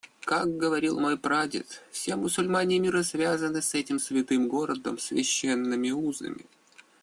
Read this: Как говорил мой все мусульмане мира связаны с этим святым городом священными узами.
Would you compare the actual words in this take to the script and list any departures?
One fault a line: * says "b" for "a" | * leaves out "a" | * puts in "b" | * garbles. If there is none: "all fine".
* puts in "прадед"